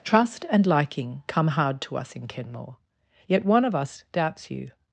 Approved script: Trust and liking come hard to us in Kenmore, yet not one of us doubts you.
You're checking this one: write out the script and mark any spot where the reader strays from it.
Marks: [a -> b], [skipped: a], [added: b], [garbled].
Trust and liking come hard to us in Kenmore, yet [skipped: not] one of us doubts you.